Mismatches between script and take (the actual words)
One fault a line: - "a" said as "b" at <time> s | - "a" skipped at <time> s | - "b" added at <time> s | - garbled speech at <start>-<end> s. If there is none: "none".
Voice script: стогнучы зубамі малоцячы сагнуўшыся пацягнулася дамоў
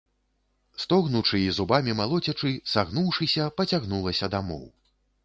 - "і" added at 1.4 s